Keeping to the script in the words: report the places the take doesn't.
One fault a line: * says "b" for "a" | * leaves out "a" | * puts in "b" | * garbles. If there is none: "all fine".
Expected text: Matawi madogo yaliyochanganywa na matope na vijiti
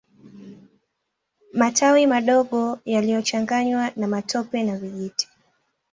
all fine